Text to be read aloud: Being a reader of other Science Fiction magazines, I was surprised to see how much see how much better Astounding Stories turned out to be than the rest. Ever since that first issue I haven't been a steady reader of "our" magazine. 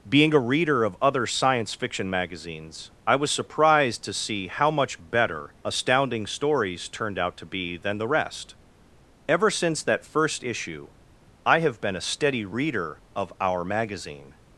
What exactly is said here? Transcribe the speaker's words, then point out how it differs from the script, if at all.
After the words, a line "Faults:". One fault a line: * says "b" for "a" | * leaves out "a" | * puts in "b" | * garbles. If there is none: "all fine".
Being a reader of other Science Fiction magazines, I was surprised to see how much better Astounding Stories turned out to be than the rest. Ever since that first issue I have been a steady reader of "our" magazine.
Faults:
* leaves out "see how much"
* says "have" for "haven't"